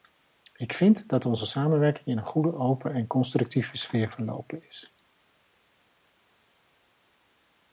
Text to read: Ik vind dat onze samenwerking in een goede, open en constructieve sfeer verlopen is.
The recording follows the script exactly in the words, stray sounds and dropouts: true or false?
true